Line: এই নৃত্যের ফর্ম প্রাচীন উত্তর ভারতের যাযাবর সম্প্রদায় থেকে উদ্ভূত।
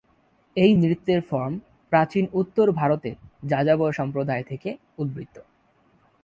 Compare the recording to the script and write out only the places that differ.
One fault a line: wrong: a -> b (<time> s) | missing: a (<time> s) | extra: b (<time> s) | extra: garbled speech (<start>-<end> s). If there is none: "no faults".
no faults